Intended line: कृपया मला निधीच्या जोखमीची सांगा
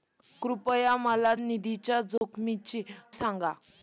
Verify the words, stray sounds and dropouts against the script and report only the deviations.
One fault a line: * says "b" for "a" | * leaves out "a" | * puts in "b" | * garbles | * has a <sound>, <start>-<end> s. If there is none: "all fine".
* has a dropout, 2.2-2.2 s